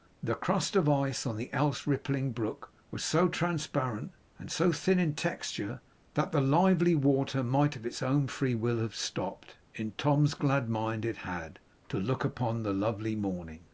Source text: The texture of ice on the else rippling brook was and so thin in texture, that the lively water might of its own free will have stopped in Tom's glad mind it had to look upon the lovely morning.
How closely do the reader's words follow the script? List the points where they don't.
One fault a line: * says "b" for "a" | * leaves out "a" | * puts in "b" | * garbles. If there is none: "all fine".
* says "crust" for "texture"
* puts in "so transparent"